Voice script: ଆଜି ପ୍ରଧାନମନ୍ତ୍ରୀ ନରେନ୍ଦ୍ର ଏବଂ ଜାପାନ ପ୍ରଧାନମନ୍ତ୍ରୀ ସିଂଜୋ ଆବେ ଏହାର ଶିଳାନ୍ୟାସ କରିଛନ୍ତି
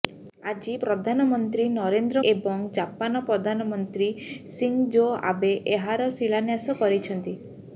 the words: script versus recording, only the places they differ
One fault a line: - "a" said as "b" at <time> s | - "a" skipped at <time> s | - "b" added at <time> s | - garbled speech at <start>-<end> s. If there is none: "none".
none